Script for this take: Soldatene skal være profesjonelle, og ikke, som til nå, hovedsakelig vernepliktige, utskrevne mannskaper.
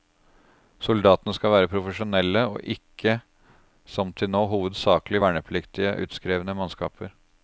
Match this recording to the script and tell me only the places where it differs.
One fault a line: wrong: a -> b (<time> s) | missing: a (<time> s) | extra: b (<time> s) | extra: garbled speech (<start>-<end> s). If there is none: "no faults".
no faults